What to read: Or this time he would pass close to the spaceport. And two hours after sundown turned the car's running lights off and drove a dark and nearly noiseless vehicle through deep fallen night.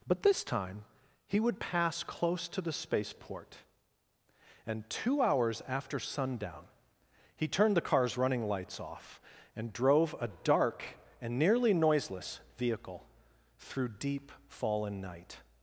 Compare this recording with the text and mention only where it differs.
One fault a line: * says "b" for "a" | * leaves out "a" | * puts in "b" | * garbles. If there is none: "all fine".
* says "But" for "Or"
* puts in "he"